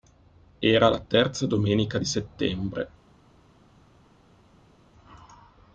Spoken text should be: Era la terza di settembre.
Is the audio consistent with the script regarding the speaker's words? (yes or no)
no